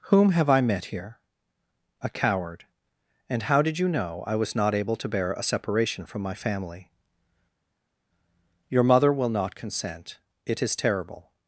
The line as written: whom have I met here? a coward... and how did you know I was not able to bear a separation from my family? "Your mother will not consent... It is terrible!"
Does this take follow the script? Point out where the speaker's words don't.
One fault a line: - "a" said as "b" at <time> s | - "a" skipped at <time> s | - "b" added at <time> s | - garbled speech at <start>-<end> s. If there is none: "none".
none